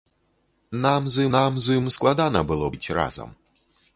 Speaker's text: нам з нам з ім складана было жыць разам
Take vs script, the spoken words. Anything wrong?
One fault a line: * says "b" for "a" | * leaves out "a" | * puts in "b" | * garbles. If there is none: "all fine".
all fine